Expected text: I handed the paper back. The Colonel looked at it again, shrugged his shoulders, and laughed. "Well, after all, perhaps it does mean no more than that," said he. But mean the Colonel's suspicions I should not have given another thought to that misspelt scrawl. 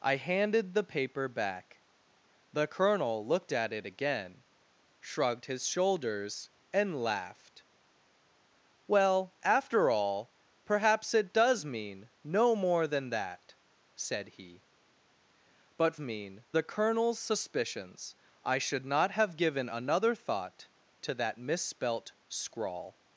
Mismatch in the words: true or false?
false